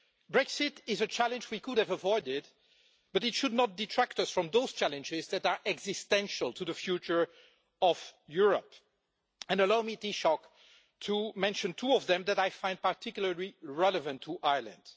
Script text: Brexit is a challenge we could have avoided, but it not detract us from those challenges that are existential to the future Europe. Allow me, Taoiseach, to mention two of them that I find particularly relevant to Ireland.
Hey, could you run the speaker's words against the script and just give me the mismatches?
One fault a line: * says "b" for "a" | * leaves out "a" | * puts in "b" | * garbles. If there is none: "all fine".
* puts in "should"
* puts in "of"